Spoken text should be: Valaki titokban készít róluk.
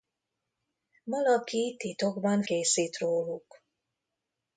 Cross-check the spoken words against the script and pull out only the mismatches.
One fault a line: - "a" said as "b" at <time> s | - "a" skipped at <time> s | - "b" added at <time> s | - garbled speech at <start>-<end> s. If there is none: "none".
none